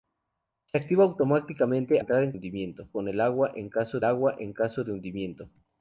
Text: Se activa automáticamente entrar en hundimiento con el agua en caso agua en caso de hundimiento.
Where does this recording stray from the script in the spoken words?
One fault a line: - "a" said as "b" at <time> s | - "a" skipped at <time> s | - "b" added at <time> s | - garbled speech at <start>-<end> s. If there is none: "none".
none